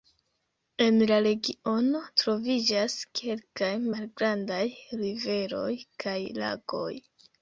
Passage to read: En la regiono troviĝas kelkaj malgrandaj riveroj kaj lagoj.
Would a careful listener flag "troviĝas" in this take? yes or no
no